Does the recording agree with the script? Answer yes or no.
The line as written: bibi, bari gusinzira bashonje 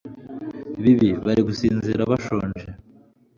yes